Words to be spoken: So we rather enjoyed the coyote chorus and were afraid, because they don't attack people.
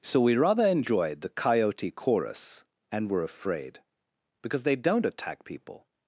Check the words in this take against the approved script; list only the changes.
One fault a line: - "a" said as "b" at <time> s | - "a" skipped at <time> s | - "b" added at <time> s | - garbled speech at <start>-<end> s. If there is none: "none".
none